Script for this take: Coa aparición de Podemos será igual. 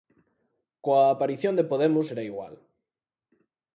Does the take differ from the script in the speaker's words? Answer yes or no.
no